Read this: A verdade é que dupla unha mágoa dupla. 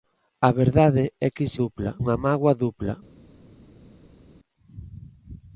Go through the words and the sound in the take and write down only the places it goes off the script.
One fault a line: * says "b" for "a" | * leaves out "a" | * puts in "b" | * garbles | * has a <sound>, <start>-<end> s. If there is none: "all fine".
all fine